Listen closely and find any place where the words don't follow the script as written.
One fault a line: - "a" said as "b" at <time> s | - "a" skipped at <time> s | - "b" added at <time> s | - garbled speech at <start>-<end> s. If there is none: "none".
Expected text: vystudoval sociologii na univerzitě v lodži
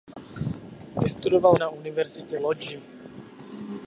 - "sociologii" skipped at 1.6 s
- "v" skipped at 2.4 s